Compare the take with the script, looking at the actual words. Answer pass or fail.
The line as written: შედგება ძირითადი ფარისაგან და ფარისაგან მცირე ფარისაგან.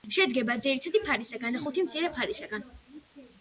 fail